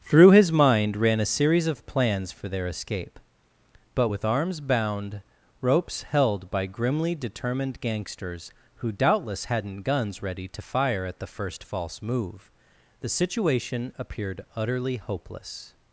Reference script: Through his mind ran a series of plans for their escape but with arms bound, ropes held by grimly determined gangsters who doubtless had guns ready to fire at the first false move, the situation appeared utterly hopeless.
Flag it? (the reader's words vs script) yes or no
yes